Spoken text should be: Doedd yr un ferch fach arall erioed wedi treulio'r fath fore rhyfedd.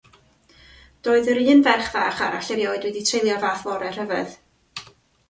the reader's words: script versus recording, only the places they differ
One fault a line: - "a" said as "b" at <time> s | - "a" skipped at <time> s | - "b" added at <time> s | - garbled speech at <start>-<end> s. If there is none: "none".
none